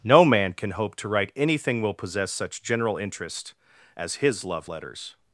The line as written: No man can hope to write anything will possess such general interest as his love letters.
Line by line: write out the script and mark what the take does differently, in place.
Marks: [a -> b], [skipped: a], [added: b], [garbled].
No man can hope to write anything will possess such general interest as his love letters.